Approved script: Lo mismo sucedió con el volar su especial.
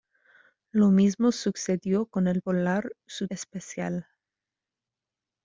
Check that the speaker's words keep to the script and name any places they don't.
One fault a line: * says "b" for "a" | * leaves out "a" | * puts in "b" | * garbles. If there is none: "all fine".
all fine